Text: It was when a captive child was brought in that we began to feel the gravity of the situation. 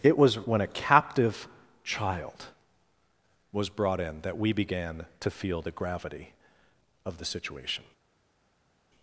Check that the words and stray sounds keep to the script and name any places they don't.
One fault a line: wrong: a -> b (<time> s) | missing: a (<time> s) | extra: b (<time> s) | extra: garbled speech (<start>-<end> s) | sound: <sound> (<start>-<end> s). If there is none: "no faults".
no faults